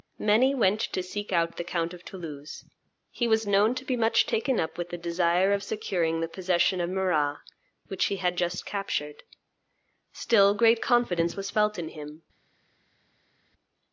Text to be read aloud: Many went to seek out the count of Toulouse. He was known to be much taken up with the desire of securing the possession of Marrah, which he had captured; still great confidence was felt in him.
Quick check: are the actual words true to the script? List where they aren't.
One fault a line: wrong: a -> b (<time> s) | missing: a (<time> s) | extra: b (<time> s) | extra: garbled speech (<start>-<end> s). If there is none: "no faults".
extra: just (8.4 s)